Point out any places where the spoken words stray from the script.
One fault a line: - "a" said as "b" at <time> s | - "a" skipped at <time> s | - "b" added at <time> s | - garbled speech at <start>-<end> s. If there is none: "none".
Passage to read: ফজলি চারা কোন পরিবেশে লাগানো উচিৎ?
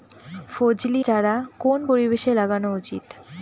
none